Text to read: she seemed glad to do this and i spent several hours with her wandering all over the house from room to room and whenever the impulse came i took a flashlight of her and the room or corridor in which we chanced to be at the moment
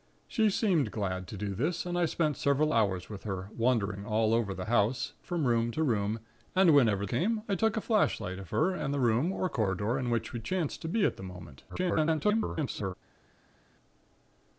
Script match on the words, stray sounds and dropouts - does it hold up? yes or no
no